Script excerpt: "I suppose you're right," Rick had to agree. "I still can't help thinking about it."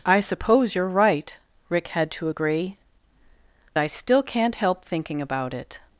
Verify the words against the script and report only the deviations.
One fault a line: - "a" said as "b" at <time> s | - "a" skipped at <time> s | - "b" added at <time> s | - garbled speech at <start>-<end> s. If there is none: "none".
none